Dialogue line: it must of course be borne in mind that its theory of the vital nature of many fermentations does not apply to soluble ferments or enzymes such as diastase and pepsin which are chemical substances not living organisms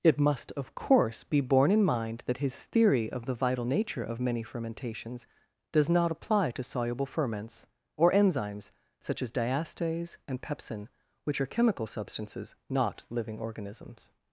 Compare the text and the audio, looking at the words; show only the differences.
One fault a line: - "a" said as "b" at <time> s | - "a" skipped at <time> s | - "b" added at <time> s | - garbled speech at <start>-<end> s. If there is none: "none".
- "its" said as "his" at 2.4 s